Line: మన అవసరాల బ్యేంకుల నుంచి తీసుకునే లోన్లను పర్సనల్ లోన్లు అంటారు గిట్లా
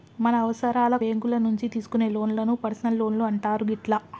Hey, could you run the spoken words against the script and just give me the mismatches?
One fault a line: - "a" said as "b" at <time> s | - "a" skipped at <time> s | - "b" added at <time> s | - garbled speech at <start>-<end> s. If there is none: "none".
none